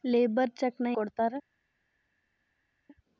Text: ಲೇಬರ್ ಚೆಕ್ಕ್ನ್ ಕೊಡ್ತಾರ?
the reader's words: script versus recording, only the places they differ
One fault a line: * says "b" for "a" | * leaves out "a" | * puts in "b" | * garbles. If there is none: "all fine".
all fine